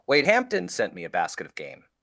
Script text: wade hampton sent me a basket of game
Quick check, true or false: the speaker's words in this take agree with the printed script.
true